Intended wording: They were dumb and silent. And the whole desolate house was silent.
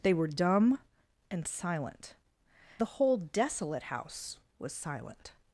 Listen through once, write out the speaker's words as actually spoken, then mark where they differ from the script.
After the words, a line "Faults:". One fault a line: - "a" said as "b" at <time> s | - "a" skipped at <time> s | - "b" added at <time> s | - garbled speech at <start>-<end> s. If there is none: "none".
They were dumb and silent. The whole desolate house was silent.
Faults:
- "And" skipped at 2.1 s